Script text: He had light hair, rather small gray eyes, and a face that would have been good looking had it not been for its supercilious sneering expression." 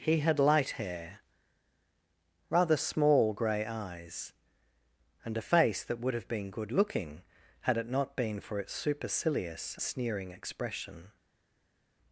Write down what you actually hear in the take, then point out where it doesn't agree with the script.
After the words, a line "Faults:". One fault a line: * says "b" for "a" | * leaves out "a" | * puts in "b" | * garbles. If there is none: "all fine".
He had light hair, rather small gray eyes, and a face that would have been good looking had it not been for its supercilious sneering expression."
Faults:
all fine